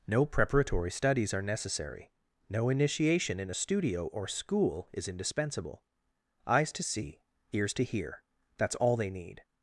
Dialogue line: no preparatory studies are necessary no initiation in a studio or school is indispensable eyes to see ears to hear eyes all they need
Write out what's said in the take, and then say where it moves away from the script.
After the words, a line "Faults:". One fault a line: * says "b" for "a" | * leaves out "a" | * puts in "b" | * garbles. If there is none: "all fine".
no preparatory studies are necessary no initiation in a studio or school is indispensable eyes to see ears to hear that's all they need
Faults:
* says "that's" for "eyes"